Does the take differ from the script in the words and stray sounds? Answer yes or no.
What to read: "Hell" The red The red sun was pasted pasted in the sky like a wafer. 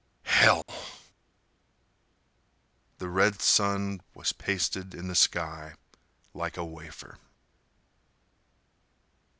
yes